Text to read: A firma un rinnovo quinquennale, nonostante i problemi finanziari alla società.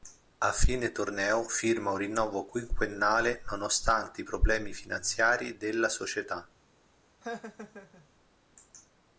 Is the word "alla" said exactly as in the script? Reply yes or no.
no